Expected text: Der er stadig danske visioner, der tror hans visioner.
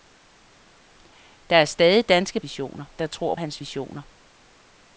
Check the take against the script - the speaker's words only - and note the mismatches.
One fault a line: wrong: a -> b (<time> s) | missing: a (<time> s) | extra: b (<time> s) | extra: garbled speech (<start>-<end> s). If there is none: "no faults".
no faults